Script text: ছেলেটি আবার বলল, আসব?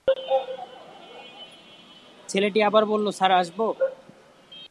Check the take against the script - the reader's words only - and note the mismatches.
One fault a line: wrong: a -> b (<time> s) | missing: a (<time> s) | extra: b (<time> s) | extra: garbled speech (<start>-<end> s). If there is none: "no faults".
extra: স্যার (3.1 s)